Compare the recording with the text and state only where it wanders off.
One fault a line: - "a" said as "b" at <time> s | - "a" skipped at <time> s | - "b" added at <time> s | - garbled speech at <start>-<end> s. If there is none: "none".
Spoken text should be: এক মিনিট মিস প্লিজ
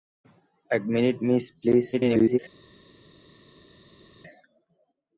- garbled speech at 1.9-2.4 s